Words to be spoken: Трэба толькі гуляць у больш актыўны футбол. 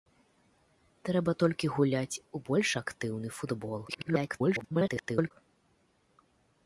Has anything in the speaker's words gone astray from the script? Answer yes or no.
yes